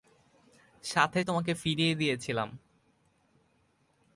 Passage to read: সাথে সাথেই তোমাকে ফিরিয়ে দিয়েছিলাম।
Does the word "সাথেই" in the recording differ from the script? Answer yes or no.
yes